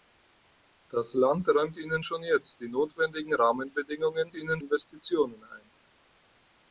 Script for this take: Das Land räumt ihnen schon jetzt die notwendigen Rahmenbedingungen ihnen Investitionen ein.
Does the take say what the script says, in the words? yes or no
yes